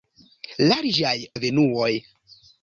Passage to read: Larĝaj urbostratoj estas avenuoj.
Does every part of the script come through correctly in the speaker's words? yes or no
no